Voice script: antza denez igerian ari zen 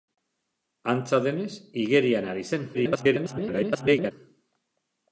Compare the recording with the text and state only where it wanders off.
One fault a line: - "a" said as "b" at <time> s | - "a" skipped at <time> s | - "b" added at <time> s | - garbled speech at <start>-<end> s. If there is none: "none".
- garbled speech at 2.7-4.1 s